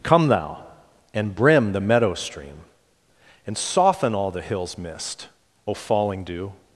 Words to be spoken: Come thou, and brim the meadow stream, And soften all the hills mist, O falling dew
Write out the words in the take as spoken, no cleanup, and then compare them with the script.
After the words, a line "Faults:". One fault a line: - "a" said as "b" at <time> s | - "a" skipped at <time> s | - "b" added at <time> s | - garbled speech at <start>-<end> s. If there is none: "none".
Come thou, and brim the meadow stream, And soften all the hills mist, O falling dew
Faults:
none